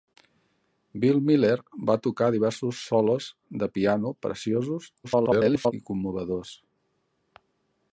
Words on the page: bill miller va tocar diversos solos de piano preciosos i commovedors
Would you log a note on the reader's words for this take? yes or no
yes